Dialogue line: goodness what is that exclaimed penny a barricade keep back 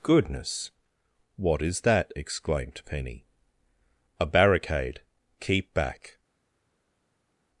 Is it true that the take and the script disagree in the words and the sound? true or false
false